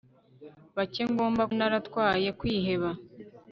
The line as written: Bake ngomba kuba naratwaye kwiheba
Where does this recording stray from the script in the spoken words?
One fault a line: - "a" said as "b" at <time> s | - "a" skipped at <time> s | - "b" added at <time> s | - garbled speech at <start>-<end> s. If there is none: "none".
- "kuba" skipped at 1.4 s